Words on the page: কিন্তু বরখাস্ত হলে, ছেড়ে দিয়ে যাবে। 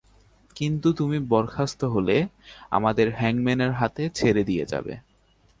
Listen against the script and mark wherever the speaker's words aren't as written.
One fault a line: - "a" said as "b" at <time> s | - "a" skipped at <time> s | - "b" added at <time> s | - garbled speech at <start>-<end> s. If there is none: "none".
- "তুমি" added at 0.9 s
- "আমাদের হ্যাংম্যানের হাতে" added at 2.7 s